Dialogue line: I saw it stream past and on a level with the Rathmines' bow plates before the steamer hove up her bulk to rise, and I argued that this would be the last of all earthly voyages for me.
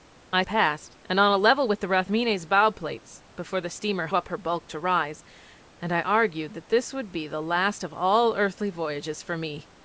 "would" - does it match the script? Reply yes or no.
yes